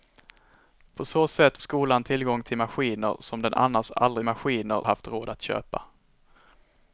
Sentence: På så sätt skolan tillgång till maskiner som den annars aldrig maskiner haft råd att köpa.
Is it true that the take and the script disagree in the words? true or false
false